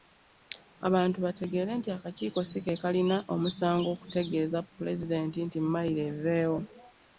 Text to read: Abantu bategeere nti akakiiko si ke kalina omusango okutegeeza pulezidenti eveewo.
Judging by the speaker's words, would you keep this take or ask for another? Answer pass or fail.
fail